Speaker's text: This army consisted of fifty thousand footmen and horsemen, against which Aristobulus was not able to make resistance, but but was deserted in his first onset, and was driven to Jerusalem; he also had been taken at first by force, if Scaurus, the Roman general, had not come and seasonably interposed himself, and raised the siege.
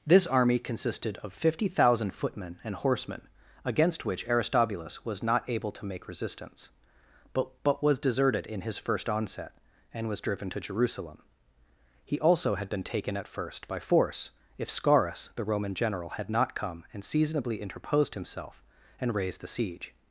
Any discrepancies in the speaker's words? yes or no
no